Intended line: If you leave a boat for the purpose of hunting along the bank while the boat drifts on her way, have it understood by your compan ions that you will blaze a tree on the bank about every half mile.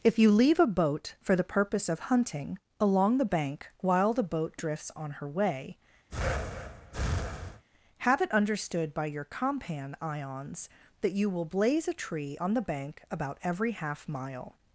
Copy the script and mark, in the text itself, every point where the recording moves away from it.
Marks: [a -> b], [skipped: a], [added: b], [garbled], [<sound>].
If you leave a boat for the purpose of hunting along the bank while the boat drifts on her way, [breath] have it understood by your compan ions that you will blaze a tree on the bank about every half mile.